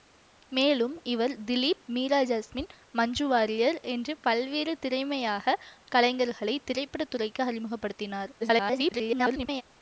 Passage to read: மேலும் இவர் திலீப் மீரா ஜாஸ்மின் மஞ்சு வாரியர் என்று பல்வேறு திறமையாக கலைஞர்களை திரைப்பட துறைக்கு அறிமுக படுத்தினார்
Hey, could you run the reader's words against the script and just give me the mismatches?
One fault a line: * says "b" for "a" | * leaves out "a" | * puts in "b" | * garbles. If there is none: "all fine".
* garbles